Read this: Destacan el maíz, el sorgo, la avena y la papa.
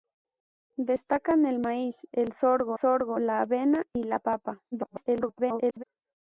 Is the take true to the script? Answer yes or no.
no